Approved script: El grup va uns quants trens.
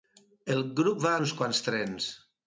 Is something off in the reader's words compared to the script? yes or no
no